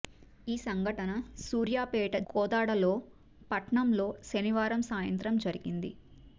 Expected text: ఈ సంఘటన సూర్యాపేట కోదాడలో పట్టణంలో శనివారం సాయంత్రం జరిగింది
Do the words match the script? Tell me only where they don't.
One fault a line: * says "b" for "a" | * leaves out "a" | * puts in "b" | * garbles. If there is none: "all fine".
all fine